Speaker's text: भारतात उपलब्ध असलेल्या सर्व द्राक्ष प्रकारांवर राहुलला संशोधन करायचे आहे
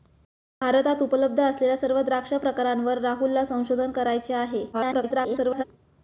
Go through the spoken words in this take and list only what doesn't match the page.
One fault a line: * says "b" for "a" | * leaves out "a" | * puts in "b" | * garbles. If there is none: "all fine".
* garbles